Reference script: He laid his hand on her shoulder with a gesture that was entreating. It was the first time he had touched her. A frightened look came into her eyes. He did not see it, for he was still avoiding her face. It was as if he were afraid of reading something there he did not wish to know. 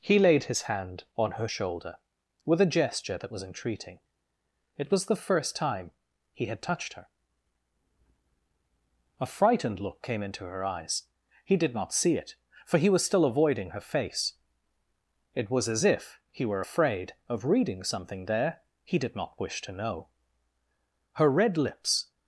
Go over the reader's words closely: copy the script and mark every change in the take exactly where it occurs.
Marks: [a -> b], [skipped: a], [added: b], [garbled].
He laid his hand on her shoulder with a gesture that was entreating. It was the first time he had touched her. A frightened look came into her eyes. He did not see it, for he was still avoiding her face. It was as if he were afraid of reading something there he did not wish to know. [added: Her red lips]